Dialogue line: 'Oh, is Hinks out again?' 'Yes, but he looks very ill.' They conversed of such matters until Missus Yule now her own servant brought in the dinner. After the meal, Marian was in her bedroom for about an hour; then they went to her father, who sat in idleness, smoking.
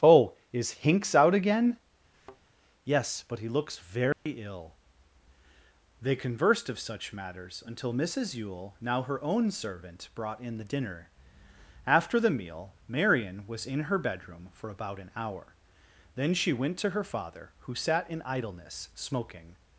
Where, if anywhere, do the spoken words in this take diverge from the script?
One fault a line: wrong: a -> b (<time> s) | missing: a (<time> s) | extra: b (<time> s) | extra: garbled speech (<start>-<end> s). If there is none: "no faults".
wrong: they -> she (16.3 s)